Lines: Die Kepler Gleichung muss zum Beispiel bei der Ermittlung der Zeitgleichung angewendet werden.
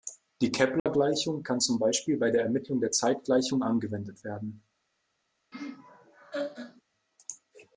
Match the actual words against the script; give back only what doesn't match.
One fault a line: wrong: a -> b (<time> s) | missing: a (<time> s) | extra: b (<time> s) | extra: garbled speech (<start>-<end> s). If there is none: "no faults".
wrong: muss -> kann (1.4 s)